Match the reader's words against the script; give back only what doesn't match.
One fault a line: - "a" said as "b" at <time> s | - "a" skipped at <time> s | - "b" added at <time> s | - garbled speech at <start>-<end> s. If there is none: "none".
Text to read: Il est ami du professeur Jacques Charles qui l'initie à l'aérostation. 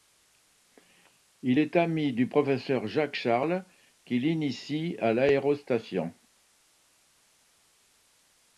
none